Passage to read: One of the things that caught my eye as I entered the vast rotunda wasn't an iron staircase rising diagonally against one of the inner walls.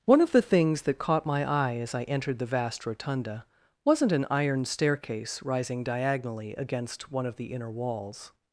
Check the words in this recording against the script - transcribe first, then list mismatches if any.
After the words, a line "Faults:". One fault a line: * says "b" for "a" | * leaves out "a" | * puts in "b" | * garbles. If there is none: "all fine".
One of the things that caught my eye as I entered the vast rotunda wasn't an iron staircase rising diagonally against one of the inner walls.
Faults:
all fine